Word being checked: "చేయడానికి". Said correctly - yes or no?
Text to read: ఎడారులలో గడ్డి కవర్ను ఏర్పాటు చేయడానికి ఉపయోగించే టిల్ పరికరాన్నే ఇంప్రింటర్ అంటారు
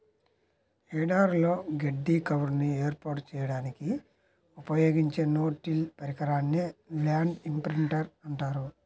yes